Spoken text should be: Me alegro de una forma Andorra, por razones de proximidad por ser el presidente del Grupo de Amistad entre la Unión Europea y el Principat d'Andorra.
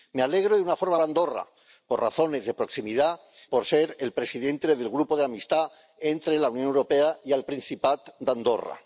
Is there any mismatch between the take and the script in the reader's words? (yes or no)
no